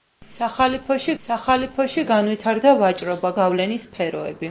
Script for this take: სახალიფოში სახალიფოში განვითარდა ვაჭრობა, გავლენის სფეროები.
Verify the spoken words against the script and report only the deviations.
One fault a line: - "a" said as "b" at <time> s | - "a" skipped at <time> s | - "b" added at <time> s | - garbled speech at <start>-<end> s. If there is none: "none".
none